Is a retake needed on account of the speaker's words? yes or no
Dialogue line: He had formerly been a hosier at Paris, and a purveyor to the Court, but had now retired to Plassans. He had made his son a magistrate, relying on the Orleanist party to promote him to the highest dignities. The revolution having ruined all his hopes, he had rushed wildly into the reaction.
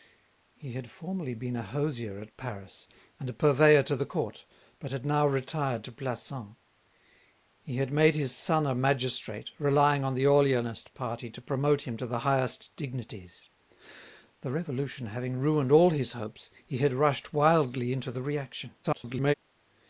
yes